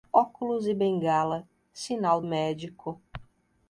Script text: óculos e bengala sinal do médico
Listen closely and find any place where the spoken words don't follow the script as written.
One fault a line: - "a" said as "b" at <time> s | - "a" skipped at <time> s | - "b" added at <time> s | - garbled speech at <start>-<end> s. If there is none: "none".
- "do" skipped at 2.2 s